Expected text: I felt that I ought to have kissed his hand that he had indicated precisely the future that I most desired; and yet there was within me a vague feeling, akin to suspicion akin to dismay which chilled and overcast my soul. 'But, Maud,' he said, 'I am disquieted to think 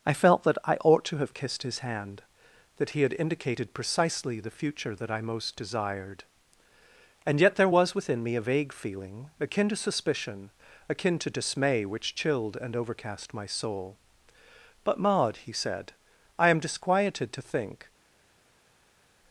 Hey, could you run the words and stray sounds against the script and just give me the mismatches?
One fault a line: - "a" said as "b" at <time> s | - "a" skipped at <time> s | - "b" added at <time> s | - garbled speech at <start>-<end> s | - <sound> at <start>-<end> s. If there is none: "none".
none